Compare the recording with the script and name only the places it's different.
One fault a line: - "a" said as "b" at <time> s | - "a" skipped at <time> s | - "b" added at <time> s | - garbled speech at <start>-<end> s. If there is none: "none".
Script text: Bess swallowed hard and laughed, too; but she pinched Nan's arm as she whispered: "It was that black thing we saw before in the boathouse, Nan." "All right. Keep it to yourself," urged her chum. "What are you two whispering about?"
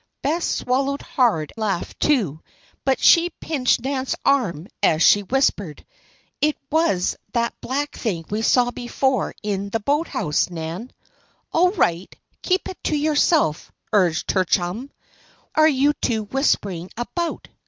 - "and" skipped at 1.5 s
- "What" skipped at 14.9 s